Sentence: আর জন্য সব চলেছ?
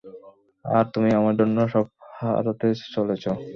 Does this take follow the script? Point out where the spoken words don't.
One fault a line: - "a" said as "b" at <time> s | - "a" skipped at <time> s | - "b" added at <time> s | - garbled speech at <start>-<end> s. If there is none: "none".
- "তুমি আমার" added at 0.9 s
- "হারাতে" added at 2.2 s